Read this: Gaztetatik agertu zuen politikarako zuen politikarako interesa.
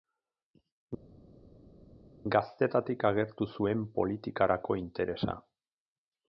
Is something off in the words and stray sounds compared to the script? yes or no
yes